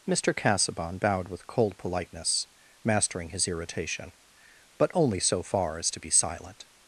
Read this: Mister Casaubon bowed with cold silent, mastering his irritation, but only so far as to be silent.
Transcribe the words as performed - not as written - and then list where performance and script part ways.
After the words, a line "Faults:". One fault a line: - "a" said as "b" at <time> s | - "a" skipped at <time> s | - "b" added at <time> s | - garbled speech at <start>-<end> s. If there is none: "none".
Mister Casaubon bowed with cold politeness, mastering his irritation, but only so far as to be silent.
Faults:
- "silent" said as "politeness" at 1.8 s